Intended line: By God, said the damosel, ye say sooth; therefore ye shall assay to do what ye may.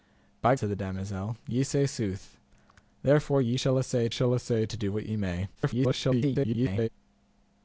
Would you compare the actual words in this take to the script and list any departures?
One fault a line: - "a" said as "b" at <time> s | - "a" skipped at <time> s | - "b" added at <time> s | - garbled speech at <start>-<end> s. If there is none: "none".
- "God" skipped at 0.6 s
- "shall assay" added at 4.1 s
- garbled speech at 5.5-6.9 s